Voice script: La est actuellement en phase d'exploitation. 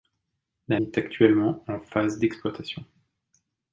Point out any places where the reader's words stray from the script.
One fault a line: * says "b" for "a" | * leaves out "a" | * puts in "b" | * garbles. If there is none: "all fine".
all fine